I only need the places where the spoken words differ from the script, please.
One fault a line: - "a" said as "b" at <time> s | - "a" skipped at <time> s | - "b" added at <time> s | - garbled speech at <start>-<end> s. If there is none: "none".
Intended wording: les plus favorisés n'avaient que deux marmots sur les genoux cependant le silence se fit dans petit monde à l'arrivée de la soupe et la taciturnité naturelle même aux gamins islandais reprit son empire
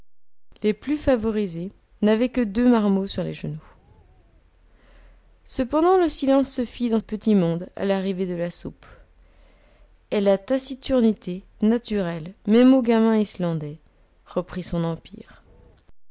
none